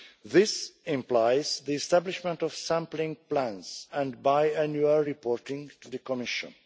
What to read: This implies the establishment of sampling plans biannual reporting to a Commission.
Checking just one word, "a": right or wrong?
wrong